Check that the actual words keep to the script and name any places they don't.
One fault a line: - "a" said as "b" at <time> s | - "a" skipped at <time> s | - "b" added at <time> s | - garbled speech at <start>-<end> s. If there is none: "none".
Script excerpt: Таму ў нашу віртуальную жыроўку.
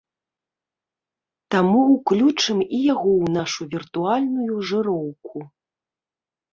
- "ўключым і яго" added at 1.9 s